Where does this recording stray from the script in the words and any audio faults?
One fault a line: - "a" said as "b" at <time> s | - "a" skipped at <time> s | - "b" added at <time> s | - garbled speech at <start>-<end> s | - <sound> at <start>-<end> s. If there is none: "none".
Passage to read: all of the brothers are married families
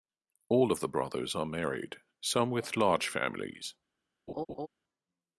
- "some with large" added at 2.2 s
- laugh at 4.3-4.7 s